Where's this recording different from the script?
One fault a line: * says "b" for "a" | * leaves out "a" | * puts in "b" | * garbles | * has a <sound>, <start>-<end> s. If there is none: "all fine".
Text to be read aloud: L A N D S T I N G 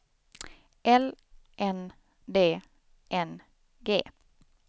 * leaves out "A"
* leaves out "S T I"